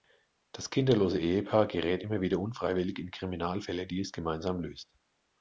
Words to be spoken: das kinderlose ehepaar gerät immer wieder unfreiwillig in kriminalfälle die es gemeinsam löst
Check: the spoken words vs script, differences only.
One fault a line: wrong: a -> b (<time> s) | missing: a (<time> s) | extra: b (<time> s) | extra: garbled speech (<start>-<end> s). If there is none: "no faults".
no faults